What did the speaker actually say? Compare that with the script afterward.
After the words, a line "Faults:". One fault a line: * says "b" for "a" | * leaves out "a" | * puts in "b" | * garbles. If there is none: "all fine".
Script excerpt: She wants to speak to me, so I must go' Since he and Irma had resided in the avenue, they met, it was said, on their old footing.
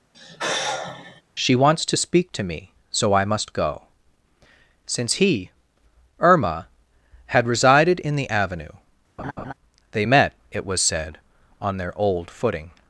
She wants to speak to me, so I must go' Since he Irma had resided in the avenue, they met, it was said, on their old footing.
Faults:
* leaves out "and"